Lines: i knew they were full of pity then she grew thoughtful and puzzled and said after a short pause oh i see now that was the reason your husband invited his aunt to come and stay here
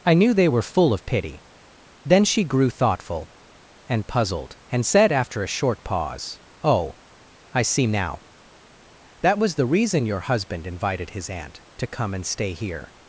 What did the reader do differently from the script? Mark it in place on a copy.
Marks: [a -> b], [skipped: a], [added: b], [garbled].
i knew they were full of pity then she grew thoughtful and puzzled and said after a short pause oh i see now that was the reason your husband invited his aunt to come and stay here